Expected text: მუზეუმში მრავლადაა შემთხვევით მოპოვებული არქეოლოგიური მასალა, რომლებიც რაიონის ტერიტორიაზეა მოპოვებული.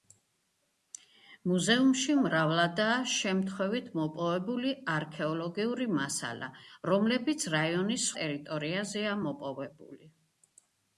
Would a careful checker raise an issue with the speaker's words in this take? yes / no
no